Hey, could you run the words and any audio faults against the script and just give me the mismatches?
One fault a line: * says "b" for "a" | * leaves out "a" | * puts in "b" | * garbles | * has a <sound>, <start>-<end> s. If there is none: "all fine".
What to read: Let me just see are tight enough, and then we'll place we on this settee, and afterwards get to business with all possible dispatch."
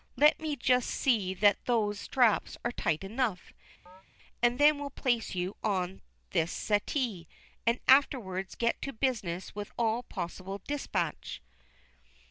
* puts in "that those straps"
* has a chirp, 3.9-4.0 s
* says "you" for "we"